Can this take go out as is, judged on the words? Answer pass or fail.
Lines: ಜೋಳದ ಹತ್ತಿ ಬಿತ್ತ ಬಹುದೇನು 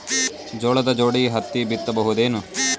fail